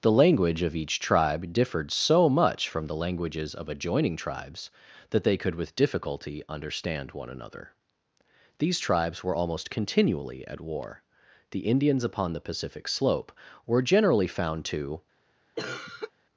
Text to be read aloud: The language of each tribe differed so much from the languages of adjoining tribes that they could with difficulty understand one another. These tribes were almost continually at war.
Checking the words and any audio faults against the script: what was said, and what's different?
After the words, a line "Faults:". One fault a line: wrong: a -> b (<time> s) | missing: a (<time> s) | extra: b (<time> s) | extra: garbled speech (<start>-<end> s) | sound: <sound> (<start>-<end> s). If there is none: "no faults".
The language of each tribe differed so much from the languages of adjoining tribes that they could with difficulty understand one another. These tribes were almost continually at war. The Indians upon the Pacific slope were generally found to
Faults:
extra: The Indians upon the Pacific slope were generally found to (11.5 s)
sound: cough (15.6-16.1 s)